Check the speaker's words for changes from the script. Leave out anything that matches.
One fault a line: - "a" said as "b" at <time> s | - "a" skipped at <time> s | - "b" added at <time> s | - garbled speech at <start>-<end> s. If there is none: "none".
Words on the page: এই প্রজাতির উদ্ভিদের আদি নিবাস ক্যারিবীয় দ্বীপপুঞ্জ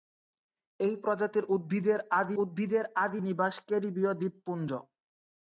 - "উদ্ভিদের আদি" added at 2.4 s